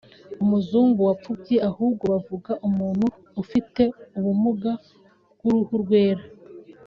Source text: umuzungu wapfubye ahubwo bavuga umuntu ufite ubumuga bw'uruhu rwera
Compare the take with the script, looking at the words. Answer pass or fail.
pass